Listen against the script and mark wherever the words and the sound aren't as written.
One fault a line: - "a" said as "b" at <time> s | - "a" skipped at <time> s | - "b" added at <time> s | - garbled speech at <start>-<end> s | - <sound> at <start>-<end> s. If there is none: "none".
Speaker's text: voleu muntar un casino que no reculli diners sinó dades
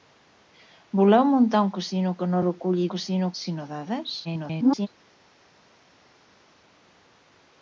- "diners" said as "casino" at 2.9 s
- garbled speech at 4.2-4.9 s